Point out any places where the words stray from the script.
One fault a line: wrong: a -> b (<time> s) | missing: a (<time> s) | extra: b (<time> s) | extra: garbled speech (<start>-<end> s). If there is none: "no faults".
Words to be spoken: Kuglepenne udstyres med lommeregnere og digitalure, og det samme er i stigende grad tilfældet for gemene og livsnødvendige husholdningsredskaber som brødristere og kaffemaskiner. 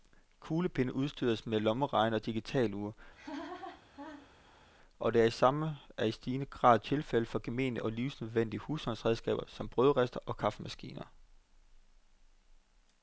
no faults